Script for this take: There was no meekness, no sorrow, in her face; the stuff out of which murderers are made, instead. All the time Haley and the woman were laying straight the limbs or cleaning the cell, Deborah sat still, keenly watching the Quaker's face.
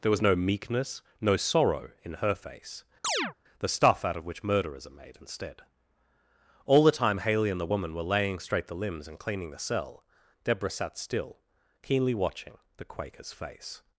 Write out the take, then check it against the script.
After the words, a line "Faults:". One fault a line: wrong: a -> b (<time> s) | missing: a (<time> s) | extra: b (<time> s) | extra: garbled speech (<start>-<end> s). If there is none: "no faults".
There was no meekness, no sorrow, in her face; the stuff out of which murderers are made, instead. All the time Haley and the woman were laying straight the limbs and cleaning the cell, Deborah sat still, keenly watching the Quaker's face.
Faults:
wrong: or -> and (9.1 s)